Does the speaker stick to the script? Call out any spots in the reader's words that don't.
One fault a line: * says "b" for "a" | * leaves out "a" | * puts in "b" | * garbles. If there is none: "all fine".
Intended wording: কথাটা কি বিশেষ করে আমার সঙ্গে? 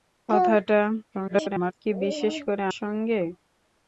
* garbles
* leaves out "আমার"